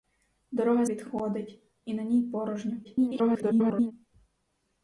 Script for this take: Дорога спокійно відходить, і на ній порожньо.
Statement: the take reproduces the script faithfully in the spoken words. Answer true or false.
false